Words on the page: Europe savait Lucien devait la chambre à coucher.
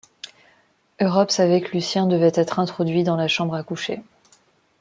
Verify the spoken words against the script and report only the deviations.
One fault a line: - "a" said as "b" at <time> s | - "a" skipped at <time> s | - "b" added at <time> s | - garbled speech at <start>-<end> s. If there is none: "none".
- "que" added at 1.6 s
- "être introduit dans" added at 2.3 s